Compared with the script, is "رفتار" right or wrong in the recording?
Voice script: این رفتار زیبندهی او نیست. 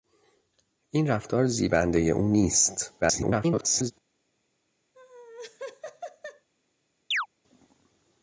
right